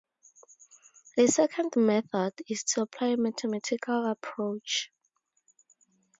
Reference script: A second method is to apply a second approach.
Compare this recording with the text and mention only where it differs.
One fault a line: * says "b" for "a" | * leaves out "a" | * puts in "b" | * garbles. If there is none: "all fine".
* says "mathematical" for "second"